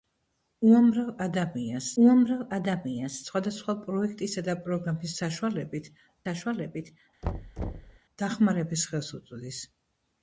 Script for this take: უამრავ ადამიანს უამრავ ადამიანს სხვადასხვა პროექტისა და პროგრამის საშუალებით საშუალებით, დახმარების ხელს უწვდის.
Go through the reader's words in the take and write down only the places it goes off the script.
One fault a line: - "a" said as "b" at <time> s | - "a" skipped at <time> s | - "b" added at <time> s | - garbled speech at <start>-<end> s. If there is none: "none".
none